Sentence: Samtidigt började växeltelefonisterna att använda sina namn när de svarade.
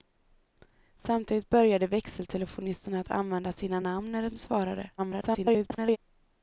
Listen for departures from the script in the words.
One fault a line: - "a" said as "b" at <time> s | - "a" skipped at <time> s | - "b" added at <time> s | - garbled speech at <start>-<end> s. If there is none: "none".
- garbled speech at 5.0-6.0 s